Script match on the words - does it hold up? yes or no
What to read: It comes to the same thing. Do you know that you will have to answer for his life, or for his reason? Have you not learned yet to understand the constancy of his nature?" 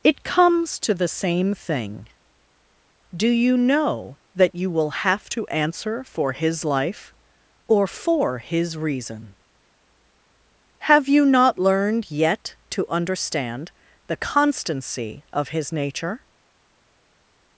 yes